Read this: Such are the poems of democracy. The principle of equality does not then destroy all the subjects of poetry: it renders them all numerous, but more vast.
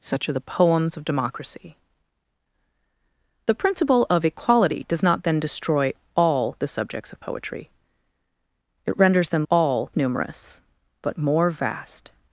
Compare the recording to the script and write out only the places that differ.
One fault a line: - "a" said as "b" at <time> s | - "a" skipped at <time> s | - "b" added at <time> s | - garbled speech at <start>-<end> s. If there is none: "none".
none